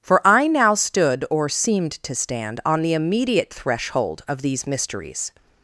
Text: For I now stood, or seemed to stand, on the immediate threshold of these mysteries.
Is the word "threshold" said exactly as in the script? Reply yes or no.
yes